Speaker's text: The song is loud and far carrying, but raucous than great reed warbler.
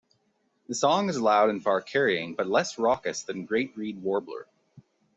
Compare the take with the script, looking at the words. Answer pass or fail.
fail